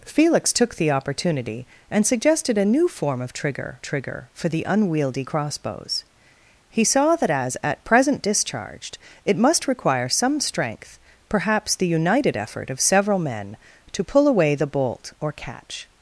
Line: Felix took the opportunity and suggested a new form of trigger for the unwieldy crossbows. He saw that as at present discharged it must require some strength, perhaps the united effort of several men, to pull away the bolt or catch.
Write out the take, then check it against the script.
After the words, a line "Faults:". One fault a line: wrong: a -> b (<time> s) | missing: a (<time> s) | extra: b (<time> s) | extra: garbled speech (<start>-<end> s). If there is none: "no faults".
Felix took the opportunity and suggested a new form of trigger trigger for the unwieldy crossbows. He saw that as at present discharged it must require some strength, perhaps the united effort of several men, to pull away the bolt or catch.
Faults:
extra: trigger (3.8 s)